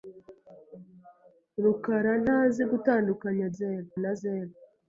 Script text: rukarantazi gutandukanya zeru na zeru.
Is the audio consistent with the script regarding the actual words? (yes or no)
yes